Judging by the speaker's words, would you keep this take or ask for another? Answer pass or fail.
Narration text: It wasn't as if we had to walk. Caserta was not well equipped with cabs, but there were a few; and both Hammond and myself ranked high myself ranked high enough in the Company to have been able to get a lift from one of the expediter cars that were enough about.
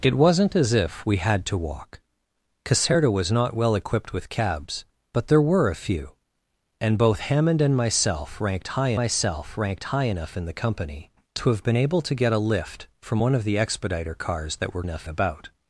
pass